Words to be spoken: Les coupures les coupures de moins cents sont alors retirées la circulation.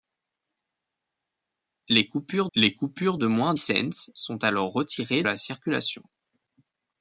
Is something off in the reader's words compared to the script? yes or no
no